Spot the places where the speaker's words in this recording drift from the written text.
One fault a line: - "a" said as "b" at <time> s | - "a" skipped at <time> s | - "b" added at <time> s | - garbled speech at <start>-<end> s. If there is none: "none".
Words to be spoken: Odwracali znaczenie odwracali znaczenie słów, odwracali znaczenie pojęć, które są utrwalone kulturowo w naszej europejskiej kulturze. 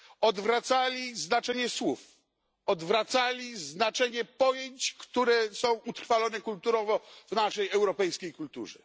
- "odwracali znaczenie" skipped at 1.7 s